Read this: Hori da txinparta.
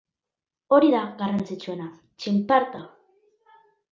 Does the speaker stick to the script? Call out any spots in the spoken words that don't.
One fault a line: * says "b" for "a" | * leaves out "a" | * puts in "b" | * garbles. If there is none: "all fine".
* puts in "garrantzitsuena"